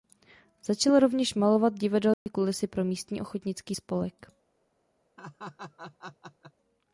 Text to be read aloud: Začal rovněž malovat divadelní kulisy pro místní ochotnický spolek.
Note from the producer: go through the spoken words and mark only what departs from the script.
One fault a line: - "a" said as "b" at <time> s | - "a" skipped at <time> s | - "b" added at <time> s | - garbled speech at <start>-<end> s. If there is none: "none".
none